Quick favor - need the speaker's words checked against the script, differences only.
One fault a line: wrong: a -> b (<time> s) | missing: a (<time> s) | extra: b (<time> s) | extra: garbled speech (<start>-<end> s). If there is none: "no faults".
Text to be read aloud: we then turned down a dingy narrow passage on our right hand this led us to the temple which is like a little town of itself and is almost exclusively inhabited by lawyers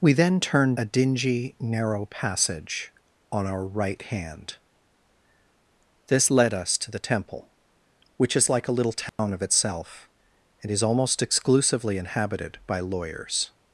missing: down (0.8 s)